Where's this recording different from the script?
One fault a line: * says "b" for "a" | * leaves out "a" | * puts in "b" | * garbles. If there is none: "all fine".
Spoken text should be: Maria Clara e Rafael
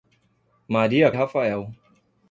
* leaves out "Clara"